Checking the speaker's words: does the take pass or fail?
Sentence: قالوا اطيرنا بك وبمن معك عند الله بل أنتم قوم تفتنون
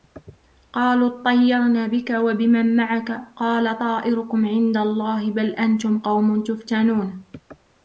fail